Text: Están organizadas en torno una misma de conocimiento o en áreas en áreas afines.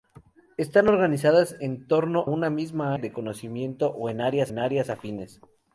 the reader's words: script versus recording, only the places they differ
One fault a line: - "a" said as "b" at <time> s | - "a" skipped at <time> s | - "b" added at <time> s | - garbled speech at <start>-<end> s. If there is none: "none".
none